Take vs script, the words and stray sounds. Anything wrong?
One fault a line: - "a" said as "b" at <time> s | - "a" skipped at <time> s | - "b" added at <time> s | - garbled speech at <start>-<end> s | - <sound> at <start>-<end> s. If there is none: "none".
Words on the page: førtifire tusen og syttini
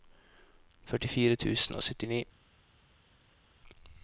none